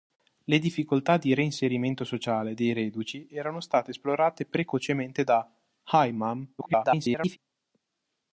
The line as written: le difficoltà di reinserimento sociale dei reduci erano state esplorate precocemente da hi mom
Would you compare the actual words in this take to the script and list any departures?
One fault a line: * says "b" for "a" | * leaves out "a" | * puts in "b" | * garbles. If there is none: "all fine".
* garbles